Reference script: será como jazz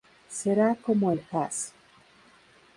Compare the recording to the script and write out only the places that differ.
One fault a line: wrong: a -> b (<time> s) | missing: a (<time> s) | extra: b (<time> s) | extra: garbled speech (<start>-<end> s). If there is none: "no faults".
extra: el (1.1 s)